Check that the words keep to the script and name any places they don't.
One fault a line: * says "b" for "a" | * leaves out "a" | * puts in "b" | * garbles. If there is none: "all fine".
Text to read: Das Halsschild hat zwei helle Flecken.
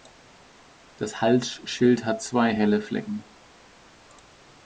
all fine